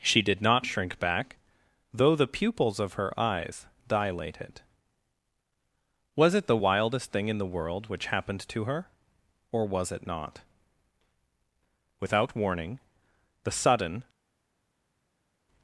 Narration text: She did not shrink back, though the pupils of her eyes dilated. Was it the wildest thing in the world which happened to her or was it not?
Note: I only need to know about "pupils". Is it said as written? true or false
true